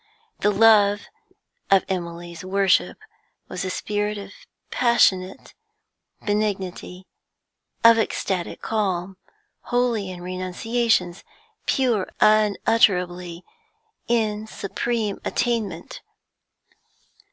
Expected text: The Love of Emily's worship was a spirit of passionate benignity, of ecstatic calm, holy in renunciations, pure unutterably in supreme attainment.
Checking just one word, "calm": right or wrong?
right